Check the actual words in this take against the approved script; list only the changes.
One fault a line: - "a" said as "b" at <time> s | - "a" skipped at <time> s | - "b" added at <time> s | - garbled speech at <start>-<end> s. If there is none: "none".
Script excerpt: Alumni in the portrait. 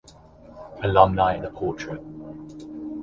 none